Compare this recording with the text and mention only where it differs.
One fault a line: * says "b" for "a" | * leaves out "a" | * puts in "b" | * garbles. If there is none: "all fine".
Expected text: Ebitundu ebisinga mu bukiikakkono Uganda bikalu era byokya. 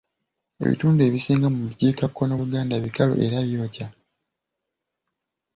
all fine